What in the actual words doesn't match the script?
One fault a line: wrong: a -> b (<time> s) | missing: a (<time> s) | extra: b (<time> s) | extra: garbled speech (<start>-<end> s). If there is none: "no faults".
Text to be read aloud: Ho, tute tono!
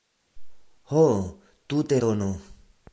no faults